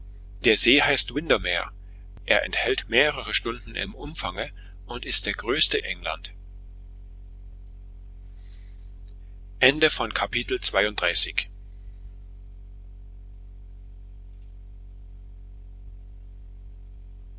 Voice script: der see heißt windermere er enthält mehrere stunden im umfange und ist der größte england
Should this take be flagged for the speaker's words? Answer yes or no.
no